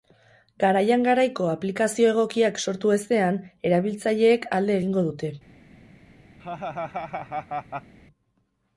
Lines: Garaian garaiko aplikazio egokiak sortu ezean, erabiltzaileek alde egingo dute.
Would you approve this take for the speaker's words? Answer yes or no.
yes